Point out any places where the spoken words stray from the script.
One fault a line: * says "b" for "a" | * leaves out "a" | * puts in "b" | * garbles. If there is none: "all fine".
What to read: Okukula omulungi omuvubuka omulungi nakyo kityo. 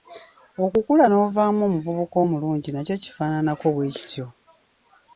* says "n'ovaamu" for "omulungi"
* puts in "kifaananako bwe"